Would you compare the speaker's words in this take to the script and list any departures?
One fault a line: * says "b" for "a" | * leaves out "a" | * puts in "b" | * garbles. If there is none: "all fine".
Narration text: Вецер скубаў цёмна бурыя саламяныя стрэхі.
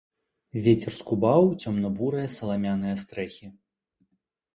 all fine